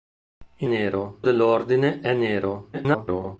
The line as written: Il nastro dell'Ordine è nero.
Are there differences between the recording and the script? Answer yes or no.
yes